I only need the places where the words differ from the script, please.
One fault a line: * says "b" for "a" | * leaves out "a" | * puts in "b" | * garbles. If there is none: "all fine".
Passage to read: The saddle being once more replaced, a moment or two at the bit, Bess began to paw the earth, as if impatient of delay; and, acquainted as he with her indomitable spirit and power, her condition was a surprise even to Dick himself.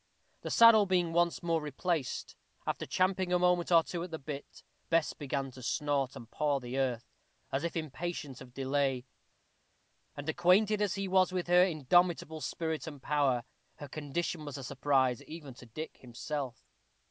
* puts in "after champing"
* puts in "snort and"
* puts in "was"